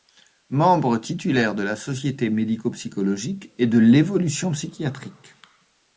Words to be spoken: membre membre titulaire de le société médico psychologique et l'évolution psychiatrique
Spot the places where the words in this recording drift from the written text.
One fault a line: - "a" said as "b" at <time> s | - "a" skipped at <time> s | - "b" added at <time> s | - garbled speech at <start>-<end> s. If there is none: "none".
- "membre" skipped at 1.0 s
- "le" said as "la" at 1.6 s
- "de" added at 3.7 s